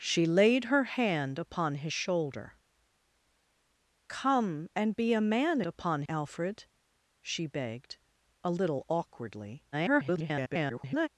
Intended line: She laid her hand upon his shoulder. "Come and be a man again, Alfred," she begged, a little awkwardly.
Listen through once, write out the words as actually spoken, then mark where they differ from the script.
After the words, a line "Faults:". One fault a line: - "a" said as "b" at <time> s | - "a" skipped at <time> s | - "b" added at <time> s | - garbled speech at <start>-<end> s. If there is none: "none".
She laid her hand upon his shoulder. "Come and be a man upon, Alfred," she begged, a little awkwardly. [garbled]
Faults:
- "again" said as "upon" at 5.6 s
- garbled speech at 9.7-11.1 s